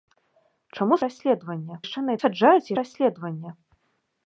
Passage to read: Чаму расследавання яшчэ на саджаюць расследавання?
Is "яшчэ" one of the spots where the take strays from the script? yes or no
no